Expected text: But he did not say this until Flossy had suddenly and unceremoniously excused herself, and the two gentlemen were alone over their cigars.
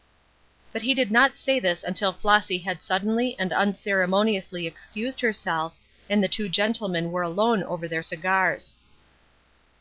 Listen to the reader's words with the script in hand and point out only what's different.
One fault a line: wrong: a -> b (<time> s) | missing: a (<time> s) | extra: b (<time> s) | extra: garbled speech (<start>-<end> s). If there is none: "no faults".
no faults